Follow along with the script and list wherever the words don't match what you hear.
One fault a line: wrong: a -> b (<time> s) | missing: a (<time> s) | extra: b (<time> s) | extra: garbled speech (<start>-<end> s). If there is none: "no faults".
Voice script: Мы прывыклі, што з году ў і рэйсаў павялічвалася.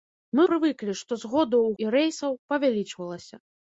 no faults